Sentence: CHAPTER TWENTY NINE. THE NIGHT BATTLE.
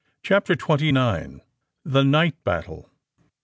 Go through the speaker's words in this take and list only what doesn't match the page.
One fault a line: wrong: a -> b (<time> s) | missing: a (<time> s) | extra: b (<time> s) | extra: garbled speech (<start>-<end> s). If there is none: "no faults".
no faults